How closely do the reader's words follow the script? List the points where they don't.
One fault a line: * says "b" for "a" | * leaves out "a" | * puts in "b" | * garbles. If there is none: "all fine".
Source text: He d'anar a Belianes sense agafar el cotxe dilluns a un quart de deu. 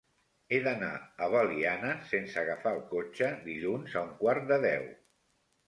all fine